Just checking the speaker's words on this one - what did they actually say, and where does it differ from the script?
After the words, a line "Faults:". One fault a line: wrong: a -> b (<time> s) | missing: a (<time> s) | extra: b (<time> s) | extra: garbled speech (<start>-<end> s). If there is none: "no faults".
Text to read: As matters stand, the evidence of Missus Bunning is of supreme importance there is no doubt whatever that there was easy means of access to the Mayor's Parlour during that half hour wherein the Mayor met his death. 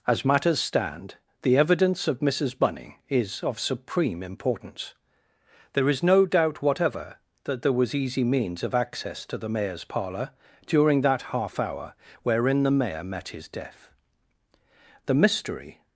As matters stand, the evidence of Missus Bunning is of supreme importance there is no doubt whatever that there was easy means of access to the Mayor's Parlour during that half hour wherein the Mayor met his death. The mystery
Faults:
extra: The mystery (15.1 s)